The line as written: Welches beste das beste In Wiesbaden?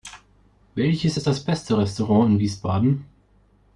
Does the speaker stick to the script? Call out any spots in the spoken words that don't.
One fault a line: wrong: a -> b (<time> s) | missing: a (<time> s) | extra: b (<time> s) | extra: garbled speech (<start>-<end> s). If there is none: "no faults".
wrong: beste -> ist (1.2 s)
extra: Restaurant (1.8 s)